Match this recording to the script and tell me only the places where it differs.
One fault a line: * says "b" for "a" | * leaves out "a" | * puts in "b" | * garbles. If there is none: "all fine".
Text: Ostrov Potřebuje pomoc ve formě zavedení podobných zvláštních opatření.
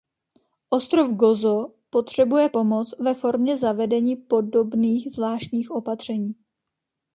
* puts in "Gozo"